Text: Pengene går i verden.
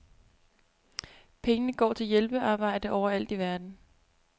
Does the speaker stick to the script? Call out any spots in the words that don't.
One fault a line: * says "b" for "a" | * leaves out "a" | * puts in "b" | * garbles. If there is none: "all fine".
* puts in "til hjælpearbejde overalt"